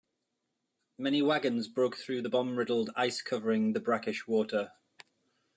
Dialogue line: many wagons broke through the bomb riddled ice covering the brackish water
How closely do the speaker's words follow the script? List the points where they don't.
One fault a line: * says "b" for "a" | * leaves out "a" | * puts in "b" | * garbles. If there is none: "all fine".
all fine